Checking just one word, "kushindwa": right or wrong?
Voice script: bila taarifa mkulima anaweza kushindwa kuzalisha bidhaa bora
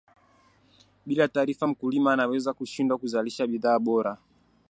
right